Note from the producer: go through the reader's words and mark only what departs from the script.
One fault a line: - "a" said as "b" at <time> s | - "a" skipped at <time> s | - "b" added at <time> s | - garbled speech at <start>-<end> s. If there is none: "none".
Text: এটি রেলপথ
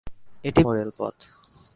none